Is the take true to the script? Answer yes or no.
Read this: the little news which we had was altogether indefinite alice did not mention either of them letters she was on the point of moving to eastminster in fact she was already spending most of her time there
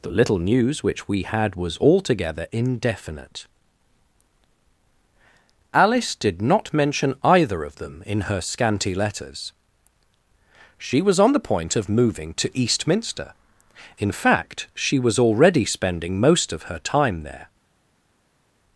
no